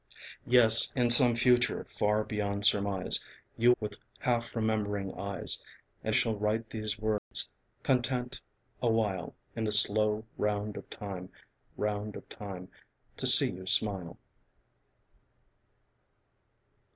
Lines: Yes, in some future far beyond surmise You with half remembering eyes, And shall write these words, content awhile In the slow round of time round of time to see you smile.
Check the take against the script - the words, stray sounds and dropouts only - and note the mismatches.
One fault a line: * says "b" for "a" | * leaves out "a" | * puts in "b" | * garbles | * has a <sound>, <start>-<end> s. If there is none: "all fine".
* has a dropout, 7.2-7.3 s